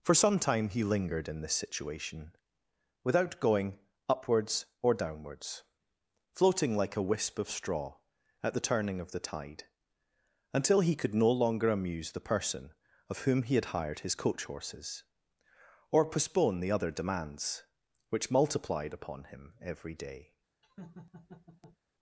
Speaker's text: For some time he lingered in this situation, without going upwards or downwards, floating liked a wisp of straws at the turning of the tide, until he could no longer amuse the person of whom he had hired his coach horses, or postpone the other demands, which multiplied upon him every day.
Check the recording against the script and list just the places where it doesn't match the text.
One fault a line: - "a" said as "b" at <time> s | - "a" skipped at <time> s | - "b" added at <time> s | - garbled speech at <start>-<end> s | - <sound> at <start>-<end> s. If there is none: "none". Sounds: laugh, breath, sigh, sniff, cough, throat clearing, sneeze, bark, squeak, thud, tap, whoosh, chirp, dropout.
- "liked" said as "like" at 6.8 s
- "straws" said as "straw" at 7.5 s
- laugh at 20.6-21.8 s